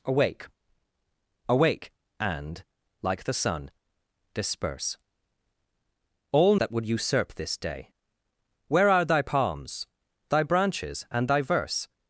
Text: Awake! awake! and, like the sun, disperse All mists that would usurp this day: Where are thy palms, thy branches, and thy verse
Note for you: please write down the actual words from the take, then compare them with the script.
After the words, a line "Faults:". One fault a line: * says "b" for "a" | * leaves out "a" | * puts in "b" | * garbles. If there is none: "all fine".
Awake! awake! and, like the sun, disperse All that would usurp this day: Where are thy palms, thy branches, and thy verse
Faults:
* leaves out "mists"